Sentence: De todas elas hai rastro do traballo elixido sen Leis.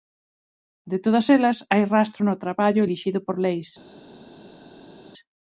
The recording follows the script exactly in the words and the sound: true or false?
false